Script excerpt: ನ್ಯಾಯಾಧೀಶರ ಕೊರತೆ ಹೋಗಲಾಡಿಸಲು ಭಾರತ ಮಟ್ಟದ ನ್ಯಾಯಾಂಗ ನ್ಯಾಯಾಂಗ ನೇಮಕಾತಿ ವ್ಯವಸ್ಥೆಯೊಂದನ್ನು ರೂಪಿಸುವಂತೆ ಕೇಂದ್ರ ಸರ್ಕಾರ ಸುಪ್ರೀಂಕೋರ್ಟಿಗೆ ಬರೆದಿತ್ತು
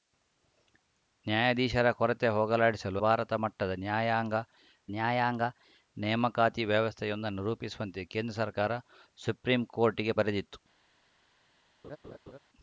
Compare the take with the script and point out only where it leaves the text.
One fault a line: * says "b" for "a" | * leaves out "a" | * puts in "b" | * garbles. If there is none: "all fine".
all fine